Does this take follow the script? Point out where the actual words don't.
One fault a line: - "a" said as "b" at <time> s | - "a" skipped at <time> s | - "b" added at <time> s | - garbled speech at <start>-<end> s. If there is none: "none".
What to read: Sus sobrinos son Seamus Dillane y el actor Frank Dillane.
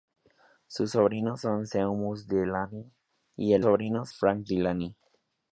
- "actor" said as "sobrinos" at 3.6 s